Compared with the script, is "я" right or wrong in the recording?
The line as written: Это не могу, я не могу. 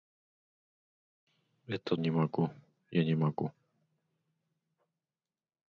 right